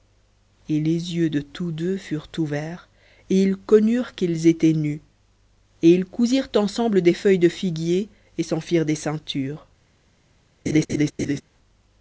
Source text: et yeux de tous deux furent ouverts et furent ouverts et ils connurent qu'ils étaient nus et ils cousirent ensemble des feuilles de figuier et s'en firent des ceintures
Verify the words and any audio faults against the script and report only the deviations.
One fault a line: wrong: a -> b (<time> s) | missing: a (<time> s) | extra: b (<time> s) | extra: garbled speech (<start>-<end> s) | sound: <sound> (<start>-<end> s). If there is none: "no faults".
extra: les (0.8 s)
missing: furent ouverts et (3.4 s)
sound: laugh (10.7-11.4 s)